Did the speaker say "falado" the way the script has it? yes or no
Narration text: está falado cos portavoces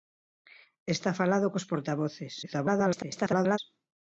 yes